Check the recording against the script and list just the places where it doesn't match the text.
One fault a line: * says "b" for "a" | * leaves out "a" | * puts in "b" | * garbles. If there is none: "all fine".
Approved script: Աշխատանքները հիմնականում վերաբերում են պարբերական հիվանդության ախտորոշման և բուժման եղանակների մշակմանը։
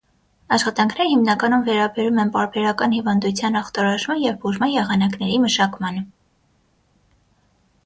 all fine